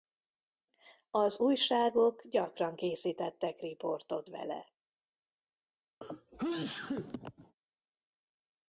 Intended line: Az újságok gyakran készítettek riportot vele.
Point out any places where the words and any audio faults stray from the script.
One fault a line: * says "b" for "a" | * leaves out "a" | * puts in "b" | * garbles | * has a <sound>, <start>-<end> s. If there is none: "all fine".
* has a sneeze, 6.0-7.5 s